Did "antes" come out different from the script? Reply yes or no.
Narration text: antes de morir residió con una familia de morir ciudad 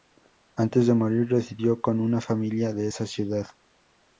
no